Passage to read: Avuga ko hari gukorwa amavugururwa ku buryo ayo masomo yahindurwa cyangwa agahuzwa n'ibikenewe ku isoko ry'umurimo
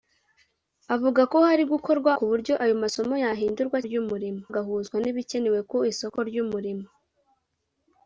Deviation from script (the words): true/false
true